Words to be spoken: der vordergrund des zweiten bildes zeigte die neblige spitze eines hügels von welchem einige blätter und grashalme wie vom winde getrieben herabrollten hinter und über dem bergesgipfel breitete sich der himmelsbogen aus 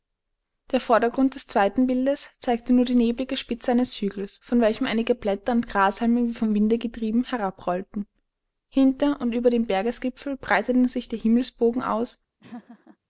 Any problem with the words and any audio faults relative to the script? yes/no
yes